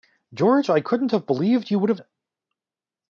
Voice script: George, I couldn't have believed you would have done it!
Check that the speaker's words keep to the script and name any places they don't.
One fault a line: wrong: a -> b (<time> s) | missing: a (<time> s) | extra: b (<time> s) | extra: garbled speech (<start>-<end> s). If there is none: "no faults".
missing: done (2.0 s)